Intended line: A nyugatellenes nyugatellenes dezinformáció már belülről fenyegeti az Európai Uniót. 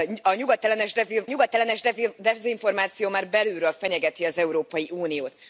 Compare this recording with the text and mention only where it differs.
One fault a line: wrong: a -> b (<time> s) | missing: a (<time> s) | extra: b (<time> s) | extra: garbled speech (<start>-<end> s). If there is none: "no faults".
no faults